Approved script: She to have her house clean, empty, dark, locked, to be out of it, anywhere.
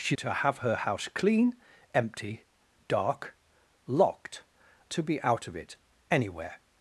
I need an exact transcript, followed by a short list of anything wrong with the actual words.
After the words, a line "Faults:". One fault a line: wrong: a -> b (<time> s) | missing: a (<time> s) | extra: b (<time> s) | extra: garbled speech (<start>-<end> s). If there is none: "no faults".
She to have her house clean, empty, dark, locked, to be out of it, anywhere.
Faults:
no faults